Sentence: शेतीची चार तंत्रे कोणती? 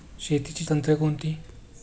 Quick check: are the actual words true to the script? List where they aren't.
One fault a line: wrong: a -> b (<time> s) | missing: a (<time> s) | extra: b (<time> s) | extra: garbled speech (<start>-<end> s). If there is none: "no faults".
missing: चार (0.7 s)